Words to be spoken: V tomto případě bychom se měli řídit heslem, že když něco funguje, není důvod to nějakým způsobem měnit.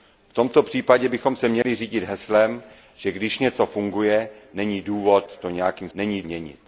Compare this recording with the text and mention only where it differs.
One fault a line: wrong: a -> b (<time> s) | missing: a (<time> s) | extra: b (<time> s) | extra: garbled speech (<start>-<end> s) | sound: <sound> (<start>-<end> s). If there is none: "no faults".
sound: dropout (1.6-1.6 s)
wrong: způsobem -> není (5.9 s)